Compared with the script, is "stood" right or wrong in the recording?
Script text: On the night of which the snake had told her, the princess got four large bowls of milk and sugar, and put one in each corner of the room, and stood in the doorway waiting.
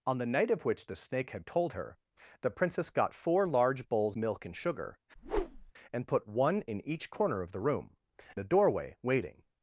wrong